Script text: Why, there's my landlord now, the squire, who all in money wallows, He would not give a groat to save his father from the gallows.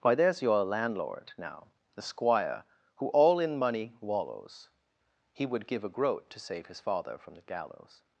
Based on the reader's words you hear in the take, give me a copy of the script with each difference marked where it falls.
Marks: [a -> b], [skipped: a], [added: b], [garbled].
Why, there's [my -> your] landlord now, the squire, who all in money wallows, He would [skipped: not] give a groat to save his father from the gallows.